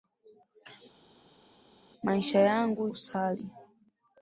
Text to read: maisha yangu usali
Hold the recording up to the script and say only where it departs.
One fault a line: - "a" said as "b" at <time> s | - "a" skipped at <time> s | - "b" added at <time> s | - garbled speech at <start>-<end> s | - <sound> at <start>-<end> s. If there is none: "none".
none